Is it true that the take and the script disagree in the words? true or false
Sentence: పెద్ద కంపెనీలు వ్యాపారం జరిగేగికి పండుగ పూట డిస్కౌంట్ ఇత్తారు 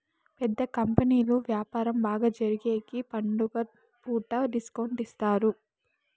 true